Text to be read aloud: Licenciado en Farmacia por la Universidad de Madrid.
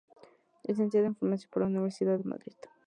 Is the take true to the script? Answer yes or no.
yes